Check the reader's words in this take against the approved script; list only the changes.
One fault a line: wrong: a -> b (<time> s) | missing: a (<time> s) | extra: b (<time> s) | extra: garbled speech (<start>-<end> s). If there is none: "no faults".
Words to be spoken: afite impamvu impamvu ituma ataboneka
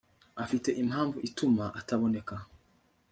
missing: impamvu (1.2 s)